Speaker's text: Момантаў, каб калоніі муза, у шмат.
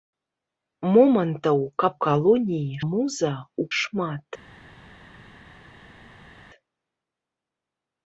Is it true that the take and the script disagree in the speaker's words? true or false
false